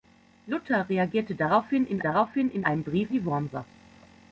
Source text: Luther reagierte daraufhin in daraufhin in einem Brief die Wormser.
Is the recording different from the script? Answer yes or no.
no